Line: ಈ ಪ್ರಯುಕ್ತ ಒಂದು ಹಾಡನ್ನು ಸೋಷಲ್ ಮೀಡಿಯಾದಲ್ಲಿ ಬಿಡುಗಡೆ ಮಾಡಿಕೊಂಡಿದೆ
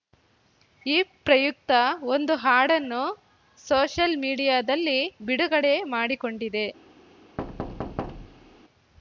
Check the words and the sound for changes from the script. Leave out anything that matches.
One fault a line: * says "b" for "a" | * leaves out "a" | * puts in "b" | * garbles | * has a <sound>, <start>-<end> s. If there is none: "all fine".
* has a thud, 7.4-8.6 s